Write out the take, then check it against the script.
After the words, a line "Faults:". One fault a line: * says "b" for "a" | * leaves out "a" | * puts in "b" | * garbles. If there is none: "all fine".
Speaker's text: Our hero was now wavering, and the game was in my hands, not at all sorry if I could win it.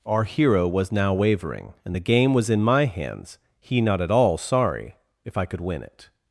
Our hero was now wavering, and the game was in my hands, he not at all sorry if I could win it.
Faults:
* puts in "he"